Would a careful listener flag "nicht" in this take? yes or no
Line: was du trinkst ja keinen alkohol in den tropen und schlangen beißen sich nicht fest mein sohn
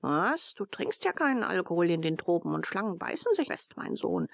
yes